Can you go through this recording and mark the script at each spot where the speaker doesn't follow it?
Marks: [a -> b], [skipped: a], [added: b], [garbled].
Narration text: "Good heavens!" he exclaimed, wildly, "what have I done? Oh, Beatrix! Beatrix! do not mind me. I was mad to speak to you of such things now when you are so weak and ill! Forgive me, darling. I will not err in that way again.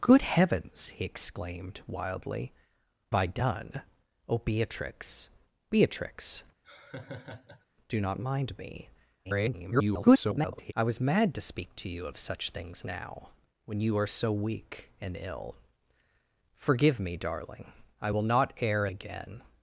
"Good heavens!" he exclaimed, wildly, [skipped: "what have] I done? Oh, Beatrix! Beatrix! do not mind me. [garbled] I was mad to speak to you of such things now when you are so weak and ill! Forgive me, darling. I will not err [skipped: in that way] again.